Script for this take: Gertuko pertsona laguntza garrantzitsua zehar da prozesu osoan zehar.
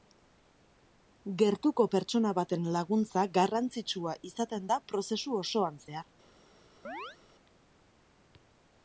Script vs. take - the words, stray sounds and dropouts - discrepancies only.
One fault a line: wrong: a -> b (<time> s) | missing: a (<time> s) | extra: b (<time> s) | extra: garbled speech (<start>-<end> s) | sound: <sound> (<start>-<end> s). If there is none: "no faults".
extra: baten (2.4 s)
wrong: zehar -> izaten (4.3 s)
sound: chirp (6.8-7.2 s)